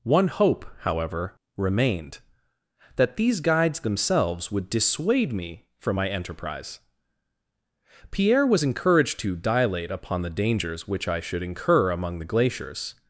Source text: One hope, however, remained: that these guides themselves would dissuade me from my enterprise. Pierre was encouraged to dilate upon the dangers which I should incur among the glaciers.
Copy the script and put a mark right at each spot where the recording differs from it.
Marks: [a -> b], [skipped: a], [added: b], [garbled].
One hope, however, remained: that these guides themselves would dissuade me from my enterprise. Pierre was encouraged to dilate upon the dangers which I should incur among the glaciers.